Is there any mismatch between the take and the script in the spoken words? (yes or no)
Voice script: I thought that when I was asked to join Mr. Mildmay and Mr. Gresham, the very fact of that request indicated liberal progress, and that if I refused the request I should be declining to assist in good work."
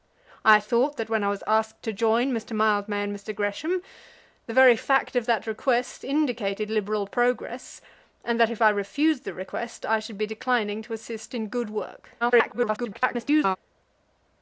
yes